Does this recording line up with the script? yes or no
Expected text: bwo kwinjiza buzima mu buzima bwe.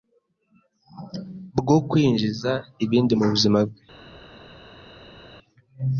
no